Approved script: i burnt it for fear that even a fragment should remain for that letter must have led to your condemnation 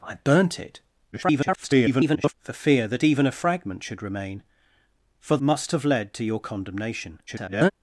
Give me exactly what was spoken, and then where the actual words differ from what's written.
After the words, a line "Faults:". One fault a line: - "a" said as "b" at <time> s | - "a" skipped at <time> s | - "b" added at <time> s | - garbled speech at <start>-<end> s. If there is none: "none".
i burnt it [garbled] for fear that even a fragment should remain for must have led to your condemnation [garbled]
Faults:
- garbled speech at 1.1-2.3 s
- "that letter" skipped at 5.4 s
- garbled speech at 7.3-7.7 s